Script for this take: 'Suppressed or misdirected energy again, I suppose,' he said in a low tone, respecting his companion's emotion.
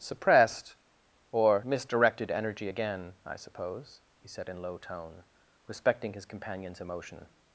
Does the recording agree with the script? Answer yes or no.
no